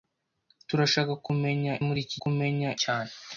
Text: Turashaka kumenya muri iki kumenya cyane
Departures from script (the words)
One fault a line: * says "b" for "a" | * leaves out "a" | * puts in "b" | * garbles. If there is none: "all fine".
all fine